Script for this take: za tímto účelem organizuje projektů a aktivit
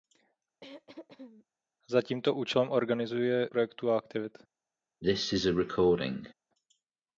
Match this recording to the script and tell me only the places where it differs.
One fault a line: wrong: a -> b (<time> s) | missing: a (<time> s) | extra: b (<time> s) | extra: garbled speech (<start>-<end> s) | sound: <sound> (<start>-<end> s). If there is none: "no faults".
sound: throat clearing (0.6-1.5 s)
sound: cough (5.0-6.3 s)